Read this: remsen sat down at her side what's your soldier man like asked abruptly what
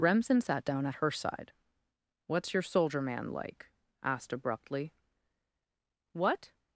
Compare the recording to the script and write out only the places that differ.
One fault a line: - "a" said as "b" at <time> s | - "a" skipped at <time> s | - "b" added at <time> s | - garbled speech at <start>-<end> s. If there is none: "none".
none